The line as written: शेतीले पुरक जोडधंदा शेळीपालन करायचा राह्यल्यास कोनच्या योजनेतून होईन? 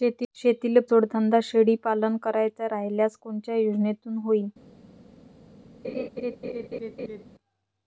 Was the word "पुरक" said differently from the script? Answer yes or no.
yes